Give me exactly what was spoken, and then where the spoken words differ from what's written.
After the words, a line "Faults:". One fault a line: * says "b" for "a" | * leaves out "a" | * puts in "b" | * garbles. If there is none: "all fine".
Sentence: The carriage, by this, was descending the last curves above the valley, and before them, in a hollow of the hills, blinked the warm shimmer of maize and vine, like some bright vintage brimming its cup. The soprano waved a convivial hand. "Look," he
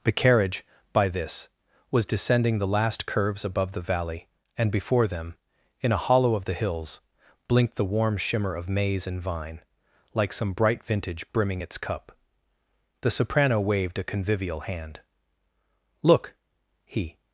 The carriage, by this, was descending the last curves above the valley, and before them, in a hollow of the hills, blinked the warm shimmer of maize and vine, like some bright vintage brimming its cup. The soprano waved a convivial hand. "Look," he
Faults:
all fine